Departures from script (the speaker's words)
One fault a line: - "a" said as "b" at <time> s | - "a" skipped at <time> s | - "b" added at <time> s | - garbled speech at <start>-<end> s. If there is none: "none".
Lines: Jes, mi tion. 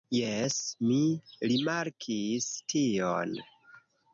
- "rimarkis" added at 1.5 s